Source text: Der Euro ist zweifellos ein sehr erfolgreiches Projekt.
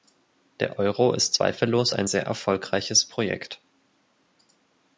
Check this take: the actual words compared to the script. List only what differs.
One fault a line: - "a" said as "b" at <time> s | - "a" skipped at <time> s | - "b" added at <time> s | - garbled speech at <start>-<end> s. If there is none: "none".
none